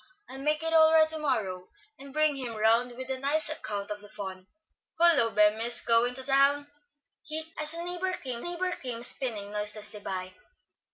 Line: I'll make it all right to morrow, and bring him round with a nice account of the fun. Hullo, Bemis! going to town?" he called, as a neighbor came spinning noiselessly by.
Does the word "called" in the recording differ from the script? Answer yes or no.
yes